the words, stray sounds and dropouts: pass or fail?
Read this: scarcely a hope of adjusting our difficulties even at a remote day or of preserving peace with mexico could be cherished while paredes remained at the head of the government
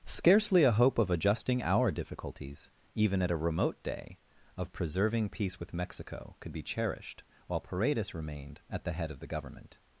fail